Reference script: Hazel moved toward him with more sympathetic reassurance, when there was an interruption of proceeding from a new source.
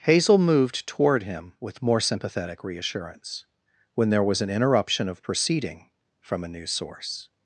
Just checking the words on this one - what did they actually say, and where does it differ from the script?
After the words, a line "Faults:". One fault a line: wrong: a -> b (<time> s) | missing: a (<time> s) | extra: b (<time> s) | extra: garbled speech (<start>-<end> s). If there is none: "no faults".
Hazel moved toward him with more sympathetic reassurance, when there was an interruption of proceeding from a new source.
Faults:
no faults